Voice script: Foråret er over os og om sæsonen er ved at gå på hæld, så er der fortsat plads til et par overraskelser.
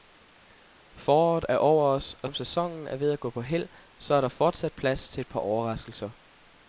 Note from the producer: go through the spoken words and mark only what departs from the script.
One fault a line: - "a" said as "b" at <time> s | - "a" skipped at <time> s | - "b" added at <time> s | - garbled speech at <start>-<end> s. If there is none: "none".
none